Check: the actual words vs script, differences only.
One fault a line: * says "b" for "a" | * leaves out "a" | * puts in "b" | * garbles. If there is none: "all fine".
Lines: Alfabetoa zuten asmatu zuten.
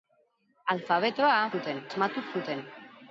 all fine